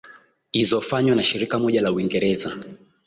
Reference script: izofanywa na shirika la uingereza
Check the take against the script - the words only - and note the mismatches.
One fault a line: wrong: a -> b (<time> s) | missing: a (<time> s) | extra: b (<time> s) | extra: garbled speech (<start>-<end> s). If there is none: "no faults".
extra: moja (1.6 s)